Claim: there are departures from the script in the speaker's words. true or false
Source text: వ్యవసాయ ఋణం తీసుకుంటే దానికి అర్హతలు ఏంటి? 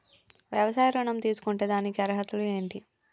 false